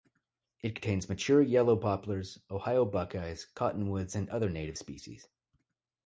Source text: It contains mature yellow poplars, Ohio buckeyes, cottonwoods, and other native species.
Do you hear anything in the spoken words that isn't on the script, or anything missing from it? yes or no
no